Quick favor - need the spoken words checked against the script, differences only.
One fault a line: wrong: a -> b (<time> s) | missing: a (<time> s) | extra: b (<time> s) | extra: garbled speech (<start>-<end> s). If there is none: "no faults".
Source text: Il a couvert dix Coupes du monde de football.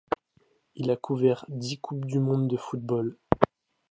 no faults